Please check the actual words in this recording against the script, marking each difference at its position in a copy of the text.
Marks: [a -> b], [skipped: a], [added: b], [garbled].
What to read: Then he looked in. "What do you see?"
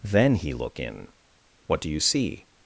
Then he [looked -> look] in. "What do you see?"